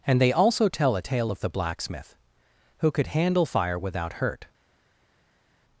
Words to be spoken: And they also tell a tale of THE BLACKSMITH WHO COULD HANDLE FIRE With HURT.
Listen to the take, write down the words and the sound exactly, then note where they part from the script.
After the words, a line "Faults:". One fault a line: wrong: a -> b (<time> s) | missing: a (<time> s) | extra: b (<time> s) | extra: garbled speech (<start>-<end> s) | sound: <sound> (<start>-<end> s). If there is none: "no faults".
And they also tell a tale of THE BLACKSMITH WHO COULD HANDLE FIRE WITHOUT HURT.
Faults:
wrong: With -> WITHOUT (3.8 s)